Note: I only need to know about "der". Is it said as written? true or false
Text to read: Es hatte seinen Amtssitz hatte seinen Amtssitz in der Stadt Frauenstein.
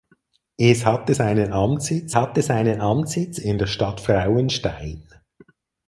true